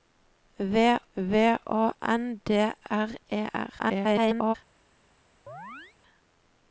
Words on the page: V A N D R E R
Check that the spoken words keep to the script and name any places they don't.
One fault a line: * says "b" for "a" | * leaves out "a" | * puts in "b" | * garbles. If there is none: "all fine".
* puts in "v"
* garbles